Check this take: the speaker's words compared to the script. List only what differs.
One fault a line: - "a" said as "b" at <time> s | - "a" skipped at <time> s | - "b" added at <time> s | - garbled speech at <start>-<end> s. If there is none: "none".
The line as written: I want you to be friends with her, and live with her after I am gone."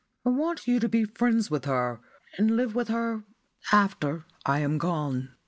none